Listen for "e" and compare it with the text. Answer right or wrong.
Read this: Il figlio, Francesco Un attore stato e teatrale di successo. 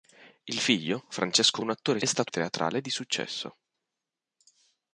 right